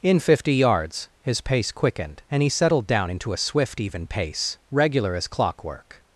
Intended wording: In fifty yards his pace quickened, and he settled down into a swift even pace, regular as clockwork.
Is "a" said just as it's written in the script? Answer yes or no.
yes